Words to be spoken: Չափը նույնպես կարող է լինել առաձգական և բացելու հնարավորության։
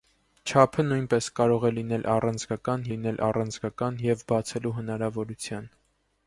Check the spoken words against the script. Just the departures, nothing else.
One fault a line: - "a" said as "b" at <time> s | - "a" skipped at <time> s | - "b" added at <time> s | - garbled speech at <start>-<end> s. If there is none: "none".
- "լինել առաձգական" added at 2.9 s